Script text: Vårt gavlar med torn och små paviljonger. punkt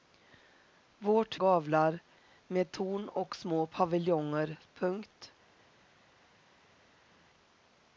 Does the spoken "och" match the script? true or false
true